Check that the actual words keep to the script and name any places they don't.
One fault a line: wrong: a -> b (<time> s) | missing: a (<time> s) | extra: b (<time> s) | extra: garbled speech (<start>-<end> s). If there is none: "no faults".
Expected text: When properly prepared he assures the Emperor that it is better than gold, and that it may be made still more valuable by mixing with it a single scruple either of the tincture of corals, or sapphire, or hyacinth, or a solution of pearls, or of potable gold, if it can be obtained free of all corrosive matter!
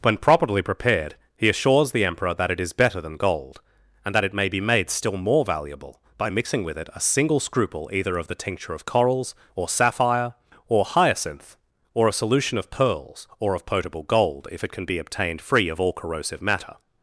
no faults